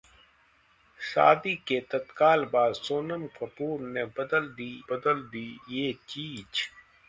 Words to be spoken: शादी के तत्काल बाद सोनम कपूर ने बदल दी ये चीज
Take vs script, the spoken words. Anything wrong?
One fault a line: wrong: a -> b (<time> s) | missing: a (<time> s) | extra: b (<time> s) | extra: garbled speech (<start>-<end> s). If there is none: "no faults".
extra: बदल दी (4.9 s)